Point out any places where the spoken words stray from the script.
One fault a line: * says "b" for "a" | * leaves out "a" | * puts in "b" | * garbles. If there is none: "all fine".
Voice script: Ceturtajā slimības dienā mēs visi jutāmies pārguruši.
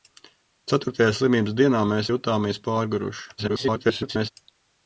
* leaves out "visi"
* garbles